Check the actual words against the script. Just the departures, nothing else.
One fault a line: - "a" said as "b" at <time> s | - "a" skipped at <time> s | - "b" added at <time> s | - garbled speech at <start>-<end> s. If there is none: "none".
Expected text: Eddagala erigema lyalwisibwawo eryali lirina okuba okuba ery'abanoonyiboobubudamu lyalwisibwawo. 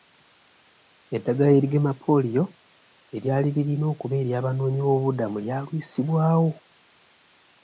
- "lyalwisibwawo" said as "pooliyo" at 2.0 s
- "okuba" skipped at 4.1 s